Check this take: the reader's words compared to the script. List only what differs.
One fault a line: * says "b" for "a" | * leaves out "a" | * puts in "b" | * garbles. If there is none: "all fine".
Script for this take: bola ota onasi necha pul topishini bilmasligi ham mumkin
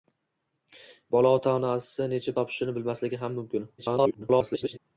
* leaves out "pul"
* garbles